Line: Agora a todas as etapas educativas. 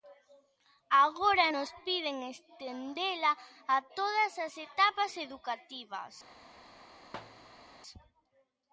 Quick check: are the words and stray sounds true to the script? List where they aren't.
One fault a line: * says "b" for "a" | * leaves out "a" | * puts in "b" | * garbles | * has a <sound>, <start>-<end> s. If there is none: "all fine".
* puts in "nos piden estendela"
* has a thud, 7.1-7.7 s